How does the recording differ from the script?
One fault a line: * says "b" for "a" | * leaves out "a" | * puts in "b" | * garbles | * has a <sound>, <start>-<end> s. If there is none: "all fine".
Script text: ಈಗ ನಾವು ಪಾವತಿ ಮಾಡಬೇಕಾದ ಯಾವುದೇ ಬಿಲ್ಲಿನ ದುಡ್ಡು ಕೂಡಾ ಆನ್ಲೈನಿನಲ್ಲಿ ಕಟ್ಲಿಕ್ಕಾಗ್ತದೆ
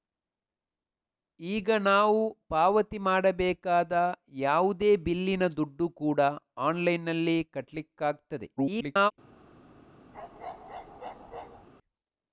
* garbles
* has a bark, 10.1-11.7 s